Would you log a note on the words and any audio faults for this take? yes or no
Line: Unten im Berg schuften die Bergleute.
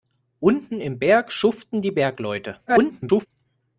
yes